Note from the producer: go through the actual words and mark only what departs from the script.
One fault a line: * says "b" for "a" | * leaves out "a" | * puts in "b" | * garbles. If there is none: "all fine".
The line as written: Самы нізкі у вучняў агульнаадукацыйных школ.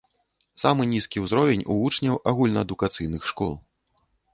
* puts in "ўзровень"